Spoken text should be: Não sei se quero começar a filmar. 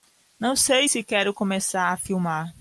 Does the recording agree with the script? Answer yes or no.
yes